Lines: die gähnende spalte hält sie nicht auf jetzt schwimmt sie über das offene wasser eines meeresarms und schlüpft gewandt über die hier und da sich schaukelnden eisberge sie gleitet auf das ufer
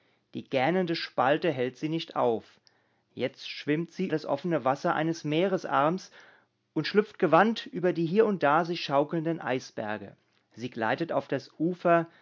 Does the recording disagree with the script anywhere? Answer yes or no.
yes